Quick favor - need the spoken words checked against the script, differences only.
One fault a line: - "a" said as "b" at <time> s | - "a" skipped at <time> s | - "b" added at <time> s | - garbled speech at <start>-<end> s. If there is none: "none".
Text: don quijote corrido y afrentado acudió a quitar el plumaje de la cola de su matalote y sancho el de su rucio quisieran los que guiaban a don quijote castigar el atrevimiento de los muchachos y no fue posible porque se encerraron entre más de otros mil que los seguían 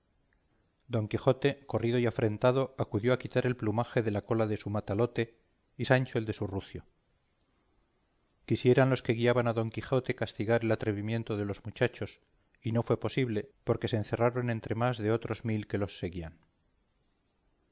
none